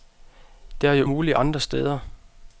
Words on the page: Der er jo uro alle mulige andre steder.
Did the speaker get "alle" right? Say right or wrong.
wrong